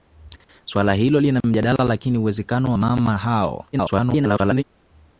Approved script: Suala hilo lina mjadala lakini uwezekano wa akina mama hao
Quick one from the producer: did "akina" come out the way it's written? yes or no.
no